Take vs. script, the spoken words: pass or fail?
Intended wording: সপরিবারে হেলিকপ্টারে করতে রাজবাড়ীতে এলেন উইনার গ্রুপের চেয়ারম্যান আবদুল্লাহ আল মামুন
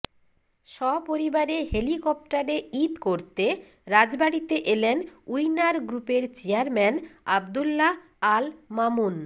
fail